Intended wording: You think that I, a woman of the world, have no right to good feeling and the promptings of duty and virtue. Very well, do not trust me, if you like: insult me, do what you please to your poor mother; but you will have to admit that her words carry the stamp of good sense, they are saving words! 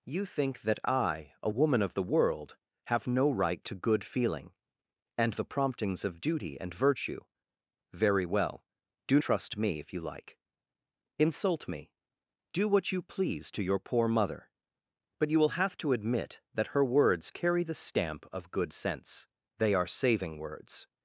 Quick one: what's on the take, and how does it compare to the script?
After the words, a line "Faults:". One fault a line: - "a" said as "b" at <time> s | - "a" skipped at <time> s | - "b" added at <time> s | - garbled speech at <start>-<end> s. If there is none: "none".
You think that I, a woman of the world, have no right to good feeling and the promptings of duty and virtue. Very well, do trust me, if you like: insult me, do what you please to your poor mother; but you will have to admit that her words carry the stamp of good sense, they are saving words!
Faults:
- "not" skipped at 9.2 s